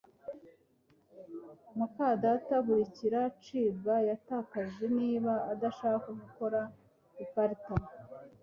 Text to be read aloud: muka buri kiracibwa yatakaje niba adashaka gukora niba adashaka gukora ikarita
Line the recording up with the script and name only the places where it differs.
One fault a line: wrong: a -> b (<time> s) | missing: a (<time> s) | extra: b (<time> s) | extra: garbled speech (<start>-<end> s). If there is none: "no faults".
extra: data (2.2 s)
missing: niba adashaka gukora (6.6 s)